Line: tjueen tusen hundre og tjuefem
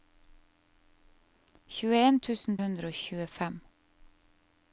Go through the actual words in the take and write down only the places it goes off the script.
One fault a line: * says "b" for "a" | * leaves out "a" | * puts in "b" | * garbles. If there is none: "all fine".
all fine